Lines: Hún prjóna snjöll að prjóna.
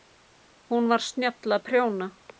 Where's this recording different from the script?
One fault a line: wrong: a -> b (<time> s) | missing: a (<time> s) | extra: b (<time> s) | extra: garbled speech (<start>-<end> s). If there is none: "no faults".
wrong: prjóna -> var (0.9 s)